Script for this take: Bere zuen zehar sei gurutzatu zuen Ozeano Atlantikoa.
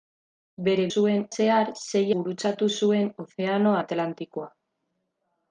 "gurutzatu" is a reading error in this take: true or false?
false